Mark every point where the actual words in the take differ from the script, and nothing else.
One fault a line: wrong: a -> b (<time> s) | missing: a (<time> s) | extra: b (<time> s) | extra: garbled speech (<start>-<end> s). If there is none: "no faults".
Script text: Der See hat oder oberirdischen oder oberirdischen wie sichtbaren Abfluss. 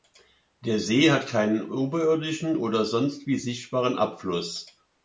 wrong: oder -> keinen (1.3 s)
wrong: oberirdischen -> sonst (2.9 s)